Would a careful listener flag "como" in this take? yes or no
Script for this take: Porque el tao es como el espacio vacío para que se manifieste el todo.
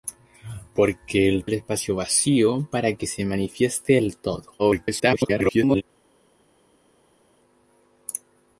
yes